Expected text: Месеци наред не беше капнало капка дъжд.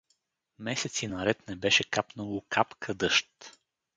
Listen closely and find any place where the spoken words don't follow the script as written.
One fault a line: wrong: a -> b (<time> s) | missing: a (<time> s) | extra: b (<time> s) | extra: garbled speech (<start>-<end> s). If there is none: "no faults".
no faults